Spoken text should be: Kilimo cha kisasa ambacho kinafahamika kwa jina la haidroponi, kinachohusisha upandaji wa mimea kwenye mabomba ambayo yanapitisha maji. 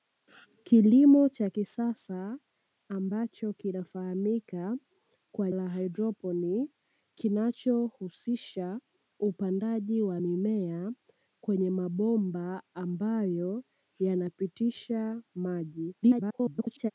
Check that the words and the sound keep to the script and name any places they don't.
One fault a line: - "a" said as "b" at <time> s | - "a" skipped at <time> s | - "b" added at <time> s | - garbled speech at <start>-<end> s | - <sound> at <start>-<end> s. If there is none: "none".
- "jina" skipped at 5.5 s
- garbled speech at 16.0-16.9 s